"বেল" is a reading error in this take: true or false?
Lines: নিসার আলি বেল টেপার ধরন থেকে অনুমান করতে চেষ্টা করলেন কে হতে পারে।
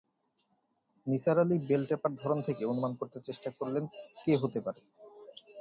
false